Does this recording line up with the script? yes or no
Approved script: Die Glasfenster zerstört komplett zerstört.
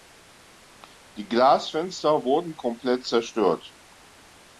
no